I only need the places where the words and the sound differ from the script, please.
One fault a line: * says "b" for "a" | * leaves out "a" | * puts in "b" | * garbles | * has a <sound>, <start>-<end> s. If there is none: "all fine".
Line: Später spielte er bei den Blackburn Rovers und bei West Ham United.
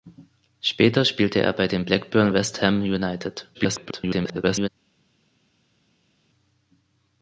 * leaves out "Rovers und bei"
* garbles